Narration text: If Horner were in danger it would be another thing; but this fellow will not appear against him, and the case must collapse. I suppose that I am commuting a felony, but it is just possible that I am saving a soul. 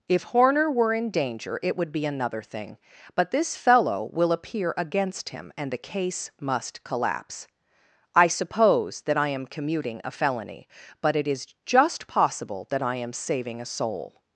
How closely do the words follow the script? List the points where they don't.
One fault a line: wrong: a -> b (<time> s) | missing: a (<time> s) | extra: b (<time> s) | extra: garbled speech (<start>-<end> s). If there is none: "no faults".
missing: not (4.3 s)